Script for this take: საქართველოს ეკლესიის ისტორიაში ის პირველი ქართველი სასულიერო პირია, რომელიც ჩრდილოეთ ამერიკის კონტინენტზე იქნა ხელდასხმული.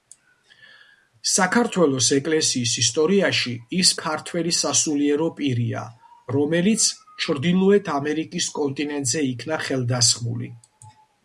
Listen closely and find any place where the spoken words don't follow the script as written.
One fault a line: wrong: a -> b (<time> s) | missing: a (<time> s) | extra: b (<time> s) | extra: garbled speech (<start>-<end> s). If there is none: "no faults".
missing: პირველი (3.9 s)